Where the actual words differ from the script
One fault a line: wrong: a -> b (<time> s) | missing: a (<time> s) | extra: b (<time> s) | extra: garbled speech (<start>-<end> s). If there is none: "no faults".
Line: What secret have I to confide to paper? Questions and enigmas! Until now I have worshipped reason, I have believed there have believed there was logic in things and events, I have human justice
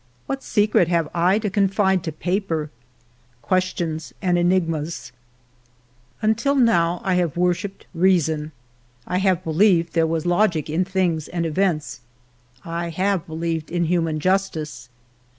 missing: have believed there (10.1 s)
extra: believed in (13.2 s)